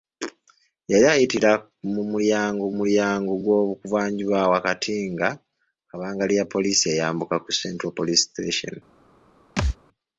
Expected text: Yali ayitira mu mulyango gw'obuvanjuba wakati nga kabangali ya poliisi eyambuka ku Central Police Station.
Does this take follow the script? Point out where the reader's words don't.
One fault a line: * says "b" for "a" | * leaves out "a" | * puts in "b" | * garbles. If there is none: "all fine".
* puts in "mulyango"